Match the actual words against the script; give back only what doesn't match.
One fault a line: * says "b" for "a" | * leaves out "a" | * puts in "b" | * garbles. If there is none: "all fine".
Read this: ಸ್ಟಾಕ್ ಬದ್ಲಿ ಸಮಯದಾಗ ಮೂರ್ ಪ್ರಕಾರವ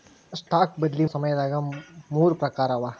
all fine